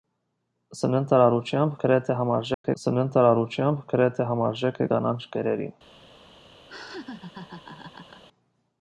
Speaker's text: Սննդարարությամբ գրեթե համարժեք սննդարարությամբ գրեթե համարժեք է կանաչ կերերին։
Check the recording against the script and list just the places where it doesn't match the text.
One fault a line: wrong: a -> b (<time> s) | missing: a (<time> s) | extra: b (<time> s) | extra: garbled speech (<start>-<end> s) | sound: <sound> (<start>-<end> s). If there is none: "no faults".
sound: dropout (2.5-2.6 s)
sound: laugh (6.7-8.2 s)